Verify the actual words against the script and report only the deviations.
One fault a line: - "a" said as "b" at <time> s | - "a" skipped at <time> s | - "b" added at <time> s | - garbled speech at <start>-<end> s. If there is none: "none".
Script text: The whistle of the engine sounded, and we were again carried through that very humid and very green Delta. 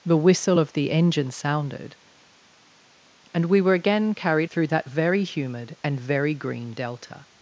none